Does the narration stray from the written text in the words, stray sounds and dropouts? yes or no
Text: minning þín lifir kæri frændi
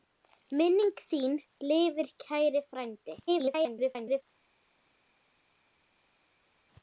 yes